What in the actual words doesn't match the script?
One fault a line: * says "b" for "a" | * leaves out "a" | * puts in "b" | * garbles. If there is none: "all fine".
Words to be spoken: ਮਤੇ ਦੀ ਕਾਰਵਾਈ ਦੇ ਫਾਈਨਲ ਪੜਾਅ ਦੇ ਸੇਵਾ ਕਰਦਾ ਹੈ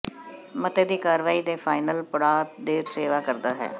all fine